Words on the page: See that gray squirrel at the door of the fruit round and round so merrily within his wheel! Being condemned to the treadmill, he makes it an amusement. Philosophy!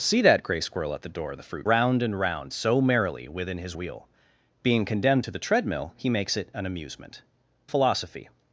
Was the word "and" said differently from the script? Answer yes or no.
no